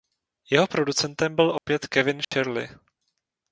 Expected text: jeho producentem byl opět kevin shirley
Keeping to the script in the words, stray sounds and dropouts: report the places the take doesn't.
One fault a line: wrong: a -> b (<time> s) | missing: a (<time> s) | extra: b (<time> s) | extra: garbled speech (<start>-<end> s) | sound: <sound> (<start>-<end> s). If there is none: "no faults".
sound: dropout (1.6-1.7 s)
sound: dropout (2.2-2.3 s)